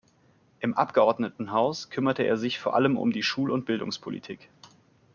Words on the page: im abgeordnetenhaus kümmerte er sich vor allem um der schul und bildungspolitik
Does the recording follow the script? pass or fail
fail